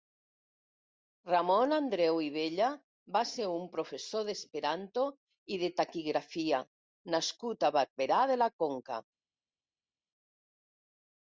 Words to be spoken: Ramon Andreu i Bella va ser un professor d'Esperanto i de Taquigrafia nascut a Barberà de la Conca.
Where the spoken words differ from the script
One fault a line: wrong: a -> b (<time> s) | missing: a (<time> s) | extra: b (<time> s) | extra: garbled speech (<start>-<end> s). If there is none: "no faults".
no faults